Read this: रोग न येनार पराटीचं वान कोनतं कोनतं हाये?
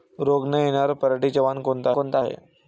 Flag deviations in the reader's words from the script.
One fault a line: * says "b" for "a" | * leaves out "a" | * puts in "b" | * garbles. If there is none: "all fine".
all fine